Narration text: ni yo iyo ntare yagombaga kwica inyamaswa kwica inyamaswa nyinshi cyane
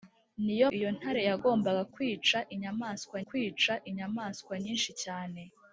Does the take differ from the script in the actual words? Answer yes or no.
no